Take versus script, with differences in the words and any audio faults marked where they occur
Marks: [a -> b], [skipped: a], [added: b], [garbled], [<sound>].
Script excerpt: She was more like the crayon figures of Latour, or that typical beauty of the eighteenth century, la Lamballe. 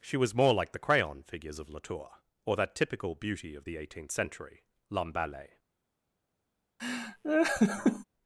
She was more like the crayon figures of Latour, or that typical beauty of the eighteenth century, [skipped: la] Lamballe. [laugh]